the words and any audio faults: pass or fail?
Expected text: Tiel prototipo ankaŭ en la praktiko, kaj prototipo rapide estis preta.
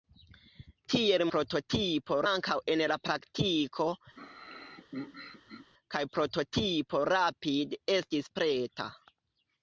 fail